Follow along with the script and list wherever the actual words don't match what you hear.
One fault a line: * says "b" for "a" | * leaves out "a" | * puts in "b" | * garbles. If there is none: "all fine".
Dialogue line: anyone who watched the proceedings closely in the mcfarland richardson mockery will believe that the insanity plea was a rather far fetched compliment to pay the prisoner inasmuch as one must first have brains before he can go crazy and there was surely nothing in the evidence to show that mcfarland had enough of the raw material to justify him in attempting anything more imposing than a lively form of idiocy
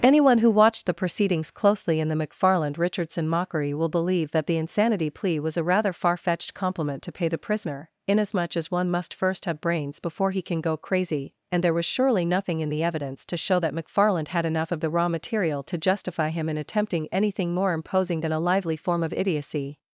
all fine